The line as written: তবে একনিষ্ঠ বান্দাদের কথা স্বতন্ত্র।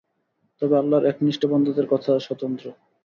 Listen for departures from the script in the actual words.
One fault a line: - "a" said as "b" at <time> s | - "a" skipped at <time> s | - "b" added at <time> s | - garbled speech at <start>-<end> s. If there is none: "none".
- "আল্লাহর" added at 0.8 s